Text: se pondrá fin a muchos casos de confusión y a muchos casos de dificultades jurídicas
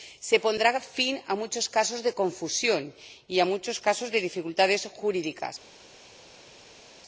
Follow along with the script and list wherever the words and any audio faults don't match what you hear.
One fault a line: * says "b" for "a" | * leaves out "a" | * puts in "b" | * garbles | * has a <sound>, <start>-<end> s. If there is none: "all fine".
all fine